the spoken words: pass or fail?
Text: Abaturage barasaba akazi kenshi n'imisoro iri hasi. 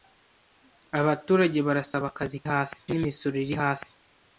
fail